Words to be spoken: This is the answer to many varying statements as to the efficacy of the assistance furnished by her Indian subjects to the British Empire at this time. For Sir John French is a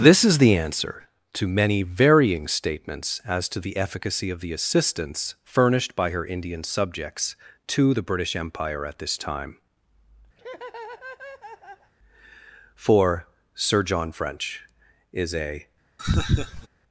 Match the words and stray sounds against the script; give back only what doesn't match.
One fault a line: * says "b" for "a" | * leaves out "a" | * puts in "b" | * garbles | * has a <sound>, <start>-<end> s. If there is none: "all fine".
* has a laugh, 10.4-11.9 s
* has a laugh, 16.0-16.7 s